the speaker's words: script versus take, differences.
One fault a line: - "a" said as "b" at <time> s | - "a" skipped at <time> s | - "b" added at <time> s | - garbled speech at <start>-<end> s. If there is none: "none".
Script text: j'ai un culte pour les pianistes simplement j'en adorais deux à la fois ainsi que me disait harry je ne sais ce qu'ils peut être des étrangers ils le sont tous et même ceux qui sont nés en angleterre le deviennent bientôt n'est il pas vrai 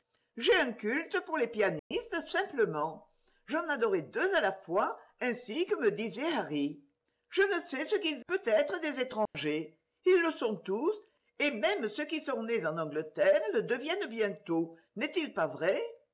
none